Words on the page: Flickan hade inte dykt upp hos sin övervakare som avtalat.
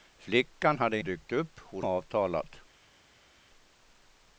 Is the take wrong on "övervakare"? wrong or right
wrong